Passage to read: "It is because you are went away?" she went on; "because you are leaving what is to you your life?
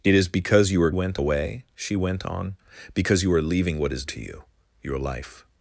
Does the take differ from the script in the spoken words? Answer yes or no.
no